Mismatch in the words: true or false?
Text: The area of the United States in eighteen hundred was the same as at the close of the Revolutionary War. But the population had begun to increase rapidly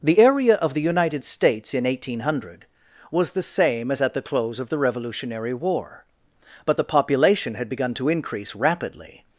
false